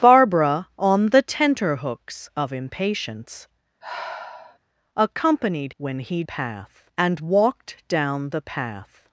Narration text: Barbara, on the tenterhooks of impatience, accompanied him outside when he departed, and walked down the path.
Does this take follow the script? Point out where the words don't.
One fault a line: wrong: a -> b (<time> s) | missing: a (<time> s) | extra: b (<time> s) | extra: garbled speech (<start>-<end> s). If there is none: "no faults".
missing: him outside (5.7 s)
wrong: departed -> path (6.2 s)